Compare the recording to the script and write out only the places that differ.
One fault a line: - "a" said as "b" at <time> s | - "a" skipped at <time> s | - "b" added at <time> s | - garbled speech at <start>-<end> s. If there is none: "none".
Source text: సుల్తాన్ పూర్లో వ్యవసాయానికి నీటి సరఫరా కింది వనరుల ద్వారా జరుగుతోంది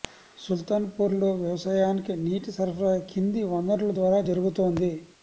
none